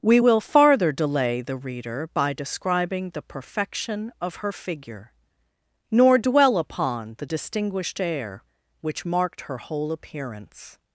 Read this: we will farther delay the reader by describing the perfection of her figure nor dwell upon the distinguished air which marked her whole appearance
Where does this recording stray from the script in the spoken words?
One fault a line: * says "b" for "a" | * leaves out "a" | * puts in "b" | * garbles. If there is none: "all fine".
all fine